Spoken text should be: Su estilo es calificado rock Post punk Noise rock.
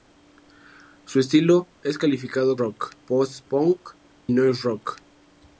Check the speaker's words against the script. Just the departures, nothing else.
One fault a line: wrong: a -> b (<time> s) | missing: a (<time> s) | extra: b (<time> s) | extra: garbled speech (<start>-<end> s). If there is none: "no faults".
no faults